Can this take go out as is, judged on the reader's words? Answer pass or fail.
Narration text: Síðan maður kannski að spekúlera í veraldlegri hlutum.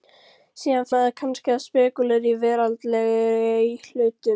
pass